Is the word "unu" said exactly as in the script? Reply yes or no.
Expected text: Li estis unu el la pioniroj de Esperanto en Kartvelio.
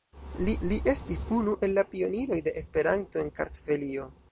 yes